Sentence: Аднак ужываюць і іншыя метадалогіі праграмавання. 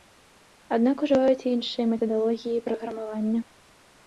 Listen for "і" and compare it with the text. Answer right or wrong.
right